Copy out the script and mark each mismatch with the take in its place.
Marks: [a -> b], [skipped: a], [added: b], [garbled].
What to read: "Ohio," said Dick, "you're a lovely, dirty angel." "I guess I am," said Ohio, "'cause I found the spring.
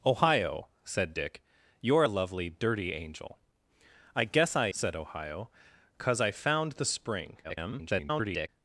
"Ohio," said Dick, "you're a lovely, dirty angel." "I guess I [skipped: am,"] said Ohio, "'cause I found the spring. [garbled]